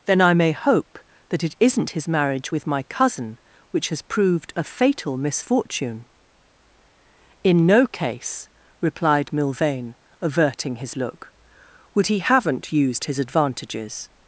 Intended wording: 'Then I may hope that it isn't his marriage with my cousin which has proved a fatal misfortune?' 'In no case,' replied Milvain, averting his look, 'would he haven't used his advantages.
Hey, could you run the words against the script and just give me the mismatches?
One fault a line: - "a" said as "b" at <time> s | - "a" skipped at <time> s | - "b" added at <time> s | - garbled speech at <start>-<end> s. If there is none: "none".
none